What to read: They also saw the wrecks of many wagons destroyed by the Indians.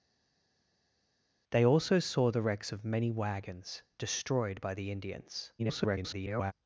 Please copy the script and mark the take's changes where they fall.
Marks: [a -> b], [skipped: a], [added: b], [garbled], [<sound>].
They also saw the wrecks of many wagons destroyed by the Indians. [garbled]